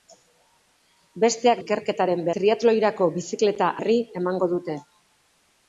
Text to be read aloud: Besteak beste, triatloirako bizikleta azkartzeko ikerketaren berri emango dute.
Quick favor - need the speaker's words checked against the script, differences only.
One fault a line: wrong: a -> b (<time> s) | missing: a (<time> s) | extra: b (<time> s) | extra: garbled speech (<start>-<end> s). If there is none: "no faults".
wrong: beste -> ikerketaren (1.6 s)
missing: azkartzeko ikerketaren (3.7 s)